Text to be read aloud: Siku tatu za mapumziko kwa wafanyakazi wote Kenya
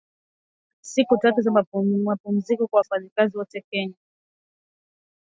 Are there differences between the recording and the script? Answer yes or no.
no